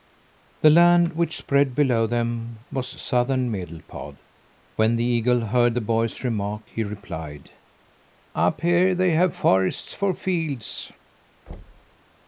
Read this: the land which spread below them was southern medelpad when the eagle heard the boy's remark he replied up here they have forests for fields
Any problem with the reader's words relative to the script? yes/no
no